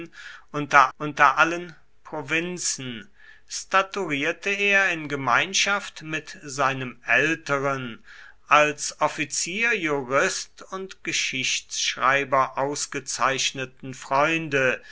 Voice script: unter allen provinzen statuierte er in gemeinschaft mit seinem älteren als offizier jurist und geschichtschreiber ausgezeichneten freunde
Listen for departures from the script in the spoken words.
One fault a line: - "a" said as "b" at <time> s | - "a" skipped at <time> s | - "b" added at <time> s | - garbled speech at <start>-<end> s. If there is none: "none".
- "unter" added at 1.0 s